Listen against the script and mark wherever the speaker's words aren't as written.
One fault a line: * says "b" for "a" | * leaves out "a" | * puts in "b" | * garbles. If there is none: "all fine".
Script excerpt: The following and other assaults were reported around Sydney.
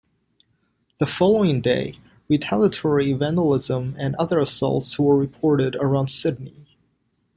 * puts in "day retaliatory vandalism"